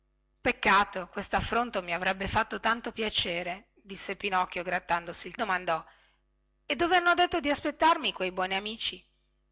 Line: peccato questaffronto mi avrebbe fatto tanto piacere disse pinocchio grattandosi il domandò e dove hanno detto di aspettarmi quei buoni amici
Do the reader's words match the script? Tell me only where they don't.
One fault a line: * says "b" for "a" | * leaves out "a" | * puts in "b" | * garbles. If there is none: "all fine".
all fine